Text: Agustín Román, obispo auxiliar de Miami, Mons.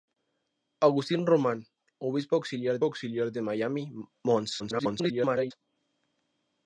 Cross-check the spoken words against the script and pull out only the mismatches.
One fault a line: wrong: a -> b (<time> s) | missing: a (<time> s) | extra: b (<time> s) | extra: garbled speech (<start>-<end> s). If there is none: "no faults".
extra: auxiliar (2.8 s)
extra: garbled speech (4.6-5.5 s)